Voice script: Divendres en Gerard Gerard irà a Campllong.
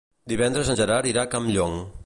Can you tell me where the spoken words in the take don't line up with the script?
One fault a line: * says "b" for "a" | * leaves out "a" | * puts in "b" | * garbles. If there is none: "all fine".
* leaves out "Gerard"